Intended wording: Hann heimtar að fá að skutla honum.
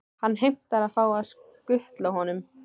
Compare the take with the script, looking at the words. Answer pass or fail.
pass